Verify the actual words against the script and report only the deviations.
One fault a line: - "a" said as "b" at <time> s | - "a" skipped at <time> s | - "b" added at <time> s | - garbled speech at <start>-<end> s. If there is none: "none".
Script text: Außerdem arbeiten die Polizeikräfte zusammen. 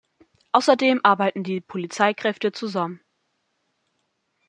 none